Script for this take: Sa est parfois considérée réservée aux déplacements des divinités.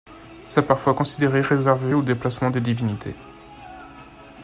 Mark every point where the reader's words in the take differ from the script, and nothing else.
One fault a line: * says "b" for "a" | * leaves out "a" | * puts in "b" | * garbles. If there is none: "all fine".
all fine